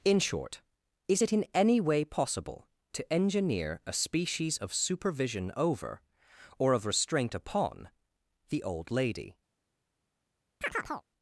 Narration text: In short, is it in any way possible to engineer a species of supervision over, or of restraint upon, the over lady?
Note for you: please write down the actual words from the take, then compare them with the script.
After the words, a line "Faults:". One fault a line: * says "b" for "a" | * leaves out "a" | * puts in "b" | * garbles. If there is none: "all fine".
In short, is it in any way possible to engineer a species of supervision over, or of restraint upon, the old lady?
Faults:
* says "old" for "over"